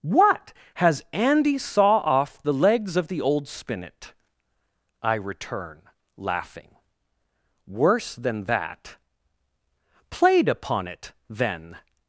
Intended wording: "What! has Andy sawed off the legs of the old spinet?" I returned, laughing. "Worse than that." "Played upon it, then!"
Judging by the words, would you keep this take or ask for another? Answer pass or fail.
fail